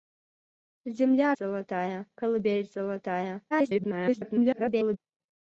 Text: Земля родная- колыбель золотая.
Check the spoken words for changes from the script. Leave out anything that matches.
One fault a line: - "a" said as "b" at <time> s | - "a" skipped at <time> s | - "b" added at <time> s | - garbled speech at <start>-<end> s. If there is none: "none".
- "родная" said as "золотая" at 1.3 s
- garbled speech at 3.5-5.0 s